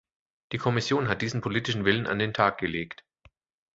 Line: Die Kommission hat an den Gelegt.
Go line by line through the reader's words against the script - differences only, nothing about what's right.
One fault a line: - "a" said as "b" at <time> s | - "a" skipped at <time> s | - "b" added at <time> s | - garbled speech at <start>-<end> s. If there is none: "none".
- "diesen politischen Willen" added at 1.2 s
- "Tag" added at 2.3 s